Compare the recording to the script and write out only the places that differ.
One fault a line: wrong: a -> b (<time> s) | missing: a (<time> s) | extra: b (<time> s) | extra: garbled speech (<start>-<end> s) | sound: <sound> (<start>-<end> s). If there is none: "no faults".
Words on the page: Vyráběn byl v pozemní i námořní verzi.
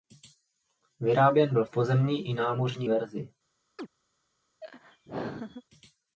sound: chirp (3.8-3.9 s)
sound: laugh (4.6-5.6 s)